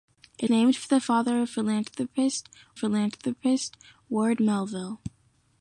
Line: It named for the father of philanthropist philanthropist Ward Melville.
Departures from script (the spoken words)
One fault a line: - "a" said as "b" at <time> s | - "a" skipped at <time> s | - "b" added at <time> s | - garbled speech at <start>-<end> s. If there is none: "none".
none